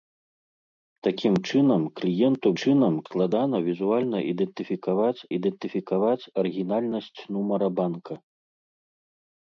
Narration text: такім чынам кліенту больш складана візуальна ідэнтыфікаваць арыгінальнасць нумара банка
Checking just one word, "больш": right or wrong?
wrong